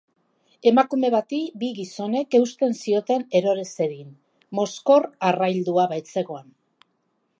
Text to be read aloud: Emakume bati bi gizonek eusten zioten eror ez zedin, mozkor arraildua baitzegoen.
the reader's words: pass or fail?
pass